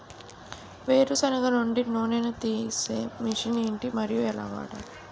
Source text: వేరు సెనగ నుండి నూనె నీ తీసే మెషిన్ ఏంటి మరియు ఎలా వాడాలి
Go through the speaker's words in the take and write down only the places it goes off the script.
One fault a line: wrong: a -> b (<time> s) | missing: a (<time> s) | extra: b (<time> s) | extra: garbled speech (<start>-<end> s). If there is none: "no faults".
no faults